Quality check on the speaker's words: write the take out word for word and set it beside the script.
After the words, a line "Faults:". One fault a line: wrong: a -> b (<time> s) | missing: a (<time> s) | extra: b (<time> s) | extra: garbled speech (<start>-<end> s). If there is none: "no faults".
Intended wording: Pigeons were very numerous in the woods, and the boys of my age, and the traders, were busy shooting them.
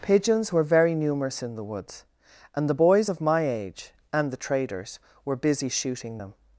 Pigeons were very numerous in the woods, and the boys of my age, and the traders, were busy shooting them.
Faults:
no faults